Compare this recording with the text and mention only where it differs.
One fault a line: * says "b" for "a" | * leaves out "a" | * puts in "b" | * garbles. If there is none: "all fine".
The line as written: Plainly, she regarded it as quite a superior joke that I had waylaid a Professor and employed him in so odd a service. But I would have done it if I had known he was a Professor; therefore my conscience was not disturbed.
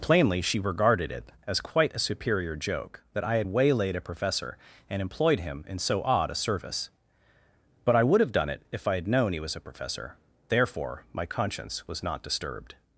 all fine